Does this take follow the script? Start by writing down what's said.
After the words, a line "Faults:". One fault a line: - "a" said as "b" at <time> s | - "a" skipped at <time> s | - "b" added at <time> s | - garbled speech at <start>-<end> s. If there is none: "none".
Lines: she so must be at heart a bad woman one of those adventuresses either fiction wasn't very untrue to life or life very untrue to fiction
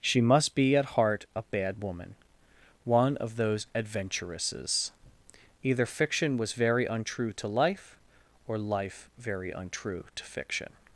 she must be at heart a bad woman one of those adventuresses either fiction was very untrue to life or life very untrue to fiction
Faults:
- "so" skipped at 0.2 s
- "wasn't" said as "was" at 6.4 s